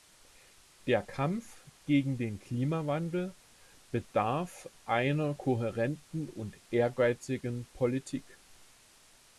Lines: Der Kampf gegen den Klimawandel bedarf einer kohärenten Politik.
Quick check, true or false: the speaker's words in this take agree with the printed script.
false